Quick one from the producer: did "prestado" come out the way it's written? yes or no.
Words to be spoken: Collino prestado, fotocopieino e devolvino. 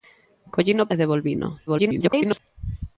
no